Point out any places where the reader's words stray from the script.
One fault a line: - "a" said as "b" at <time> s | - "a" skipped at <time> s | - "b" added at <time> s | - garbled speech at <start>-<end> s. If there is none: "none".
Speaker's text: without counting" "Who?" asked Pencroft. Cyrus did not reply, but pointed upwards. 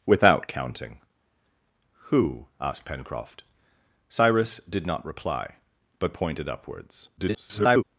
- garbled speech at 7.2-7.8 s